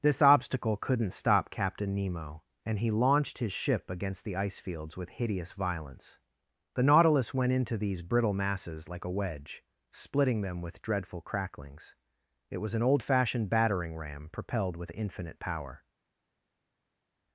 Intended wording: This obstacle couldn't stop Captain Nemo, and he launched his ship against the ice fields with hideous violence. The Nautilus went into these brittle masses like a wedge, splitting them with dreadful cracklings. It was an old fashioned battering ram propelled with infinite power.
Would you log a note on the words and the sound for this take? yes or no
no